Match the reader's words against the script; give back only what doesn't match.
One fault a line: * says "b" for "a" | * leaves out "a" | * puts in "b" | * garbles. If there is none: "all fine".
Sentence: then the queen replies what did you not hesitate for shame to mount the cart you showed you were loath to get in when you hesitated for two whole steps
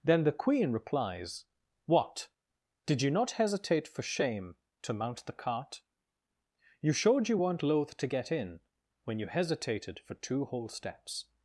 * says "weren't" for "were"